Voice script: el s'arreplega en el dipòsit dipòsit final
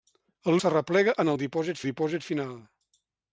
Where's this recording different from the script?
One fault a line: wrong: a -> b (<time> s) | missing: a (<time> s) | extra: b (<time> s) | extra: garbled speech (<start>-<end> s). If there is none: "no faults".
no faults